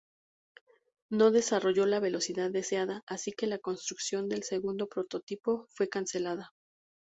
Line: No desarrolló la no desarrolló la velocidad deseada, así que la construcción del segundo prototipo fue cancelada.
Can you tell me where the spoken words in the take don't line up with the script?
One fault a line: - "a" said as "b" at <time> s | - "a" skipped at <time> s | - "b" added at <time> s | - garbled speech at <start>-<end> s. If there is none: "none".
- "no desarrolló la" skipped at 2.0 s